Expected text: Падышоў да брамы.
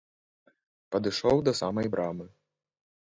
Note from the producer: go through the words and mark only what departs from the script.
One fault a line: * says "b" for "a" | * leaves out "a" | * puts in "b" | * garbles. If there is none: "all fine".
* puts in "самай"